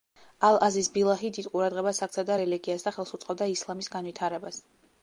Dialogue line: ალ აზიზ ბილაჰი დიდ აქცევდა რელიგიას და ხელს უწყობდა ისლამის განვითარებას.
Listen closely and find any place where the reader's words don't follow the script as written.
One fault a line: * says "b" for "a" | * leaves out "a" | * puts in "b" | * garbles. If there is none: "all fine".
* puts in "ყურადღებას"